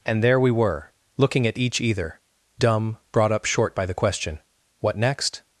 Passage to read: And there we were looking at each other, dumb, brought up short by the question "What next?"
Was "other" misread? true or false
true